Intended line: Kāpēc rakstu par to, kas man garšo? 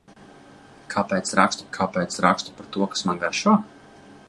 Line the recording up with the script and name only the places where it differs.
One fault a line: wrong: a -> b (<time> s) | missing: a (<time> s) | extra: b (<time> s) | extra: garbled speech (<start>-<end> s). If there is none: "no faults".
extra: kāpēc rakstu (1.8 s)